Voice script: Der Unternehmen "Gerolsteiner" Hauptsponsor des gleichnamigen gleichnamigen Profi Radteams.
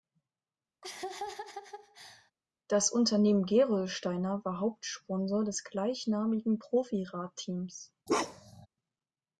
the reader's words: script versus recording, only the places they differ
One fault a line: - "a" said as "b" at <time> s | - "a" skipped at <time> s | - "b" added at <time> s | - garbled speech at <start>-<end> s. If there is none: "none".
- "Der" said as "Das" at 2.7 s
- "war" added at 4.4 s
- "gleichnamigen" skipped at 6.6 s